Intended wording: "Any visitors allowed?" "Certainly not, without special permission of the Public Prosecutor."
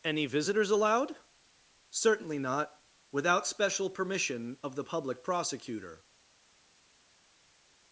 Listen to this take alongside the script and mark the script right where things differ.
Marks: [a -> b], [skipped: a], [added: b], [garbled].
"Any visitors allowed?" "Certainly not, without special permission of the Public Prosecutor."